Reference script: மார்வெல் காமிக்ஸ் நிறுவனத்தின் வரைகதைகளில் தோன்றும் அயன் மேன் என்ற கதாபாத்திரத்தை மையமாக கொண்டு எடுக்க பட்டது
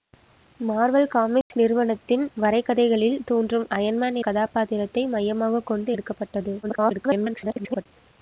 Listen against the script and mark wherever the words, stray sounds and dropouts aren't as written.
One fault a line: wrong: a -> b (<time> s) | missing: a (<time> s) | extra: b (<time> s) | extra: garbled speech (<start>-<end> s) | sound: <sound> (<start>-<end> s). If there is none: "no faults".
sound: dropout (1.4-1.5 s)
missing: என்ற (4.2 s)
extra: garbled speech (6.6-7.9 s)